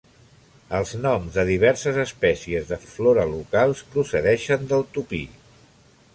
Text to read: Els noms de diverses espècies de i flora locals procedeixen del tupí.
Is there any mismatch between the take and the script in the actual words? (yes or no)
no